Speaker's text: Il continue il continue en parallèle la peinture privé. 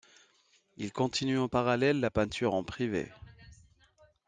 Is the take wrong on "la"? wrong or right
right